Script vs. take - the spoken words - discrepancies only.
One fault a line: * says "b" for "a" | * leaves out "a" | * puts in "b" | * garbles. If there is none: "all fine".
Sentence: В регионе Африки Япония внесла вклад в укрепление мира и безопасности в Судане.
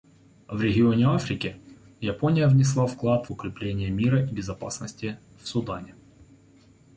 all fine